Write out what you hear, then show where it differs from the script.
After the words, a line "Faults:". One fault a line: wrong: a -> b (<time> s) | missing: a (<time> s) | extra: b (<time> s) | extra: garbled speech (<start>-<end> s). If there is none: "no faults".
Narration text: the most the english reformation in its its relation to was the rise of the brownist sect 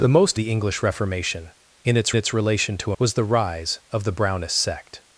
the most the english reformation in its its relation to was the rise of the brownist sect
Faults:
no faults